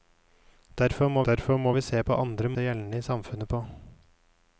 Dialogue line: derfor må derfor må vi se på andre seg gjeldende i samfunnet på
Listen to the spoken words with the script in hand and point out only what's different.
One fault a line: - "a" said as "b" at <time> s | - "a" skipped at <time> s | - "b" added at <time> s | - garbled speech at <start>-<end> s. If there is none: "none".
none